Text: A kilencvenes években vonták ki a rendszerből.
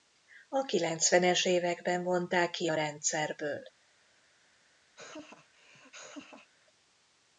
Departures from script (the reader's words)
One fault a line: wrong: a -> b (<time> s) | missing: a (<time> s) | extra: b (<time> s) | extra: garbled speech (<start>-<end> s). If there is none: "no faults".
no faults